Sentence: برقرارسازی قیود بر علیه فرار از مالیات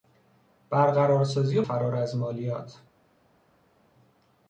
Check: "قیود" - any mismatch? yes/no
yes